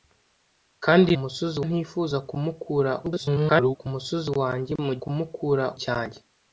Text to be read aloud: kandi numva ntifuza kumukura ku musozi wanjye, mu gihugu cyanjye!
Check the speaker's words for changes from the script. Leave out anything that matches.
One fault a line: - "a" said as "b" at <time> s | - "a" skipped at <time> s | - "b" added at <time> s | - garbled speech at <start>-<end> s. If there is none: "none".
- "numva" said as "musozi" at 1.2 s
- garbled speech at 3.0-3.8 s
- "gihugu" said as "kumukura" at 5.0 s